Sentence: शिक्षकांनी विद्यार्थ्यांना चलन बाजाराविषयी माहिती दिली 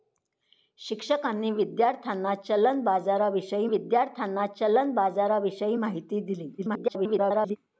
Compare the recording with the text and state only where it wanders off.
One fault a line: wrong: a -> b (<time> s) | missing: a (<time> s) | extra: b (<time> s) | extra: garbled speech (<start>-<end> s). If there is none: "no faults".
extra: विद्यार्थ्यांना चलन बाजाराविषयी (3.6 s)
extra: garbled speech (6.6-7.6 s)